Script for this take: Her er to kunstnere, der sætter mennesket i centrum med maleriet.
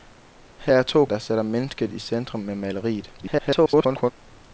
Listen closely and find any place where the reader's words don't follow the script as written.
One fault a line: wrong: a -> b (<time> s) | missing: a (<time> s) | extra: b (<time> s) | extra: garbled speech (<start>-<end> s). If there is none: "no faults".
missing: kunstnere (1.0 s)
extra: garbled speech (3.2-4.1 s)